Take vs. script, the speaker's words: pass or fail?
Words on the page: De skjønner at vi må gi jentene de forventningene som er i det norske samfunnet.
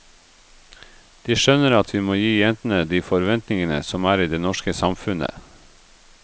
pass